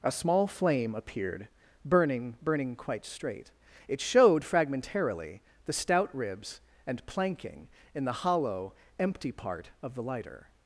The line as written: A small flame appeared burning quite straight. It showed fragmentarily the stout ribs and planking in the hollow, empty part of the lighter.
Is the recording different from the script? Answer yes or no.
yes